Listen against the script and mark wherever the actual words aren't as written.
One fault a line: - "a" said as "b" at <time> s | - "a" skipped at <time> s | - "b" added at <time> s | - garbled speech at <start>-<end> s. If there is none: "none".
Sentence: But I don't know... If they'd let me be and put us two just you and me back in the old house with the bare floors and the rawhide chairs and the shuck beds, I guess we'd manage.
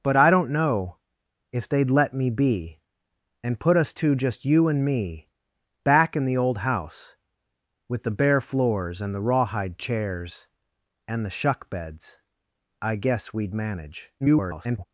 - garbled speech at 14.2-14.9 s